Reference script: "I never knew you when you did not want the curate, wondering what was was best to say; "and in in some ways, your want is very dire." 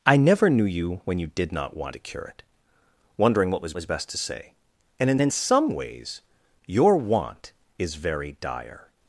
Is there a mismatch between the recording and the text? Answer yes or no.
no